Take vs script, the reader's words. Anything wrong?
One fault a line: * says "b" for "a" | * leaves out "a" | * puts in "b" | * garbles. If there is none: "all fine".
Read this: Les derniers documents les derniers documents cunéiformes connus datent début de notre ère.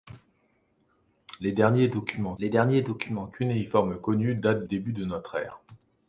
all fine